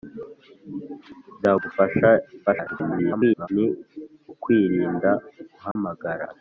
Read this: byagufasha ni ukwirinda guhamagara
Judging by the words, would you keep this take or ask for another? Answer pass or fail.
fail